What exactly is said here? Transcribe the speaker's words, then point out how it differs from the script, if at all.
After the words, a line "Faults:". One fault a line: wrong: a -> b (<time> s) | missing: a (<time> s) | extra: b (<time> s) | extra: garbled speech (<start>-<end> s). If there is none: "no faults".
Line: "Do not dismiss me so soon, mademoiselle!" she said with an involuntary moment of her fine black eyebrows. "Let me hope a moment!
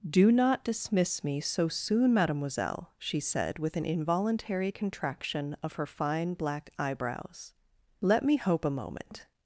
"Do not dismiss me so soon, mademoiselle!" she said with an involuntary contraction of her fine black eyebrows. "Let me hope a moment!
Faults:
wrong: moment -> contraction (4.7 s)